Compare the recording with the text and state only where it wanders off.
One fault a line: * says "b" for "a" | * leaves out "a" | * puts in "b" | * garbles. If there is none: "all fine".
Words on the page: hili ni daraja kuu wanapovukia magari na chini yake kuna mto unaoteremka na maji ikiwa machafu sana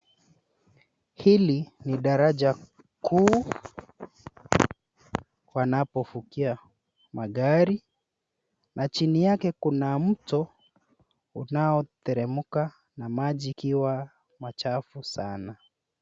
all fine